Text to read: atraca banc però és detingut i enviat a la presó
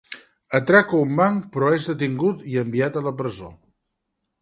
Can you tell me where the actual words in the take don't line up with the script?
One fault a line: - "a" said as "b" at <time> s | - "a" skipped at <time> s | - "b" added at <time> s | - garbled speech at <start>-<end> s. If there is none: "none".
- "un" added at 1.0 s